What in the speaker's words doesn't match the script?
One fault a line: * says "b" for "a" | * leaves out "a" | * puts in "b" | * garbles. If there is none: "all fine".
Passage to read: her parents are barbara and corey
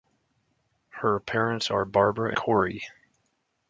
* leaves out "and"